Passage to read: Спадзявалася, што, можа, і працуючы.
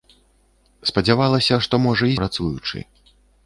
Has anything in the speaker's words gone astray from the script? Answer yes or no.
no